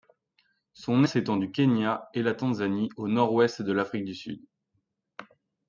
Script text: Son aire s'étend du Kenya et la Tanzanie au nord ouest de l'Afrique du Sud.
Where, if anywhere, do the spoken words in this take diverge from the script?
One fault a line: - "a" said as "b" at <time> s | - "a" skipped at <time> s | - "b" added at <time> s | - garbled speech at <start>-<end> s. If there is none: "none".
- "aire" skipped at 1.0 s